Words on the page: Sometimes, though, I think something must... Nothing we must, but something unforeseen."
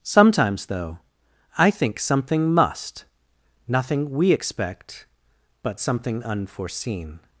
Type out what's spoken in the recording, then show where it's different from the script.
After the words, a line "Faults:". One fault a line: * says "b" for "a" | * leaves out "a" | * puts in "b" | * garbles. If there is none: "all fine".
Sometimes, though, I think something must... Nothing we expect, but something unforeseen."
Faults:
* says "expect" for "must"